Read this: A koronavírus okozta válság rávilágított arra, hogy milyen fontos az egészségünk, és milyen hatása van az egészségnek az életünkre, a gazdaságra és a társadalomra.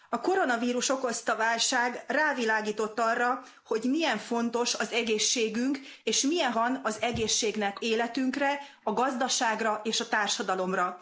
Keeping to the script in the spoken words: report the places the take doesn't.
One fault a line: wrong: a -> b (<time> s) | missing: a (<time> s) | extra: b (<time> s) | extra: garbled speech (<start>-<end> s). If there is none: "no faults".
missing: hatása (6.5 s)
missing: az (7.8 s)